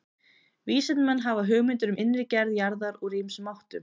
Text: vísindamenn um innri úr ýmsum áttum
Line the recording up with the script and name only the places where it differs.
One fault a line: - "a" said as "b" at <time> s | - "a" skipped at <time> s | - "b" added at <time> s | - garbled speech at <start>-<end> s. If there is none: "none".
- "hafa hugmyndir" added at 1.2 s
- "gerð jarðar" added at 2.4 s